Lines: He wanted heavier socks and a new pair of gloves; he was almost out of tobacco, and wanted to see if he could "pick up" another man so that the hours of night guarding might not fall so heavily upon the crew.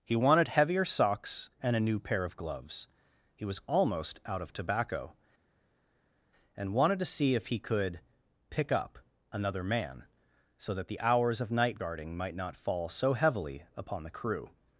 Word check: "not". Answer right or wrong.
right